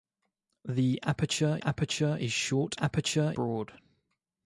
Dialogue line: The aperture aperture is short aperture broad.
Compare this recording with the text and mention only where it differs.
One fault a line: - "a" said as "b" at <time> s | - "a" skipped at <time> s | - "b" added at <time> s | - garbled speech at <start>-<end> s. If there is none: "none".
none